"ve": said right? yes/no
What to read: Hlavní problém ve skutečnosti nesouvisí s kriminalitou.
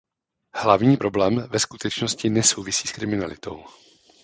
yes